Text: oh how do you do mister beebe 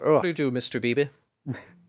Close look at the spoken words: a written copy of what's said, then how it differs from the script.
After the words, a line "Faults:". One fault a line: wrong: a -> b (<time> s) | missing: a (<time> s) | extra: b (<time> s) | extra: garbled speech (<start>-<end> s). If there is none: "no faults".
oh do you do mister beebe
Faults:
missing: how (0.2 s)